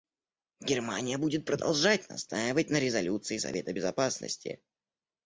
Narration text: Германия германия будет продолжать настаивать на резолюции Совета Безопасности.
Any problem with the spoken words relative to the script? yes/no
yes